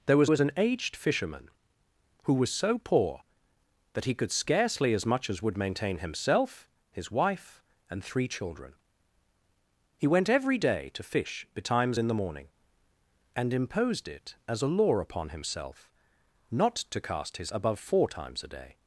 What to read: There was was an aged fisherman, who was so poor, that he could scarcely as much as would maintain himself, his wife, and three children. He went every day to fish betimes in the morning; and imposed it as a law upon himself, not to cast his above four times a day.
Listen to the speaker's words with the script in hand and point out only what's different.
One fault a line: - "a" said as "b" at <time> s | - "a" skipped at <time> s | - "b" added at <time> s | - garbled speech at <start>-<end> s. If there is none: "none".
none